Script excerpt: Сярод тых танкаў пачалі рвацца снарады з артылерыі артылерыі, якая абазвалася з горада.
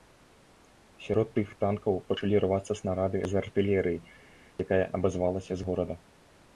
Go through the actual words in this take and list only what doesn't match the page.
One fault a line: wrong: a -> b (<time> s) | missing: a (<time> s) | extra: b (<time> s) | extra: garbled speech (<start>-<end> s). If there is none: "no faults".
missing: артылерыі (4.0 s)